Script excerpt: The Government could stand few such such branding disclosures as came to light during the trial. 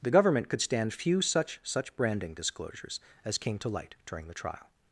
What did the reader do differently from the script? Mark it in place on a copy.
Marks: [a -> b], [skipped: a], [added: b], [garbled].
The Government could stand few such such branding disclosures as came to light during the trial.